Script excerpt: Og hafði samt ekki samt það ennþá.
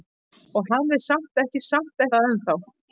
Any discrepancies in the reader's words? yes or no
no